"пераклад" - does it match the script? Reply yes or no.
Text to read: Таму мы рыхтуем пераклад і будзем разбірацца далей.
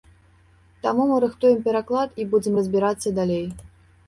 yes